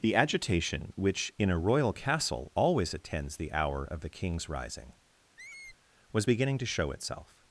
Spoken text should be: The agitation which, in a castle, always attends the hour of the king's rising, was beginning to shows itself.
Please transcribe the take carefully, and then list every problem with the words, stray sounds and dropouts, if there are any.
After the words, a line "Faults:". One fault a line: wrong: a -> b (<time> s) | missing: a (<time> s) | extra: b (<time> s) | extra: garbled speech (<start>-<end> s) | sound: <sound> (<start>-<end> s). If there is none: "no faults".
The agitation which, in a royal castle, always attends the hour of the king's rising, was beginning to show itself.
Faults:
extra: royal (1.6 s)
sound: squeak (5.4-5.8 s)
wrong: shows -> show (6.6 s)